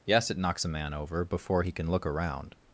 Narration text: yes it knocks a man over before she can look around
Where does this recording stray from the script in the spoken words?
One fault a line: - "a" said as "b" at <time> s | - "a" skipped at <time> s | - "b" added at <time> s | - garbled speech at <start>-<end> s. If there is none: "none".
- "she" said as "he" at 1.6 s